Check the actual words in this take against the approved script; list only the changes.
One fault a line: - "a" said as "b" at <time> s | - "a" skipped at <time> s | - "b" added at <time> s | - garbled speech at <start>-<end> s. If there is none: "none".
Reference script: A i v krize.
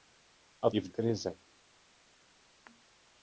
none